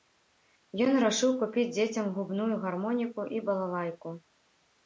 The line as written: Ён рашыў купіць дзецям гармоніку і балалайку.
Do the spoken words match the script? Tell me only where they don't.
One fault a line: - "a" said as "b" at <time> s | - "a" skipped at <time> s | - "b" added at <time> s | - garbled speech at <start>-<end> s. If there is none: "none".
- "губную" added at 2.1 s